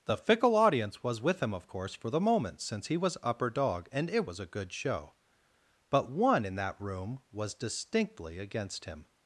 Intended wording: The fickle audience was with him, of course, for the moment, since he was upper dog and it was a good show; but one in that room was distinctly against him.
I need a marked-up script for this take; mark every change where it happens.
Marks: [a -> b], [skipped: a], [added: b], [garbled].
The fickle audience was with him, of course, for the moment, since he was upper dog and it was a good show; but one in that room was distinctly against him.